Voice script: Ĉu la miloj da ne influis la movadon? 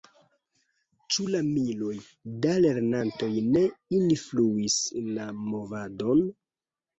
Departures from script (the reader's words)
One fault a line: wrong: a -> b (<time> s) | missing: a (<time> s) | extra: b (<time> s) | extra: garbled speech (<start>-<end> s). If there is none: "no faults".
extra: lernantoj (2.7 s)